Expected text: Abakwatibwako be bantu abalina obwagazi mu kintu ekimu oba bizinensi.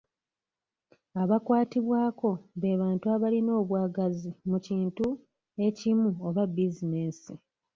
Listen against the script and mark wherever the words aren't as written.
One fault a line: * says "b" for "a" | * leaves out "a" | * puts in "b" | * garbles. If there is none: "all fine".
all fine